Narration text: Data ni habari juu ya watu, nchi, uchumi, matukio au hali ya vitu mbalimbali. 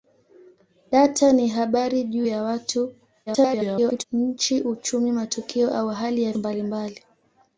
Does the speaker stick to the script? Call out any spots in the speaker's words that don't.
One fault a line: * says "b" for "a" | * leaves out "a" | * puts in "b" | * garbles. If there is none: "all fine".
* garbles
* leaves out "vitu"